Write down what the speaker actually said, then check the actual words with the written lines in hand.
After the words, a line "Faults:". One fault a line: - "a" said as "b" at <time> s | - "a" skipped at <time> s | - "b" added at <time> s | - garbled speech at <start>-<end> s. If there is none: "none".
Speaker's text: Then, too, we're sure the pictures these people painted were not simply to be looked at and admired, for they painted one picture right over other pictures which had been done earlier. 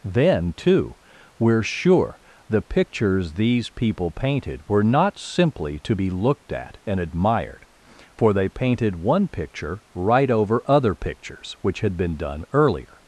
Then, too, we're sure the pictures these people painted were not simply to be looked at and admired, for they painted one picture right over other pictures which had been done earlier.
Faults:
none